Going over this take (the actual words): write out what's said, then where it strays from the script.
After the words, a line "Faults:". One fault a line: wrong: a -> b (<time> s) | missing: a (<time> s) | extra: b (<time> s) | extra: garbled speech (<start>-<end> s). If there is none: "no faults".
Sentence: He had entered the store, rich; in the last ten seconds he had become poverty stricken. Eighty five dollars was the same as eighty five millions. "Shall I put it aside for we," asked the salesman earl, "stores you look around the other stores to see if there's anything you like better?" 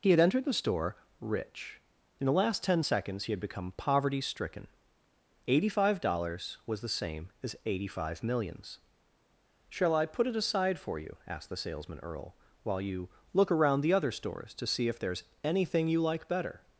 He had entered the store, rich; in the last ten seconds he had become poverty stricken. Eighty five dollars was the same as eighty five millions. "Shall I put it aside for you," asked the salesman earl, "while you look around the other stores to see if there's anything you like better?"
Faults:
wrong: we -> you (11.0 s)
wrong: stores -> while (12.6 s)